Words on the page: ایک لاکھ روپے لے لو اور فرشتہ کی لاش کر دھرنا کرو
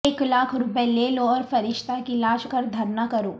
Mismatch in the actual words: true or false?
false